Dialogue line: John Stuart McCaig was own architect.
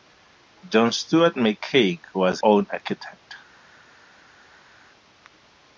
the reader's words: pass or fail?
pass